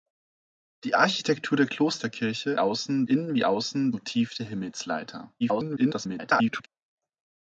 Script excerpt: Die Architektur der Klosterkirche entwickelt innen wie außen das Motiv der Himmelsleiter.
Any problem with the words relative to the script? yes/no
yes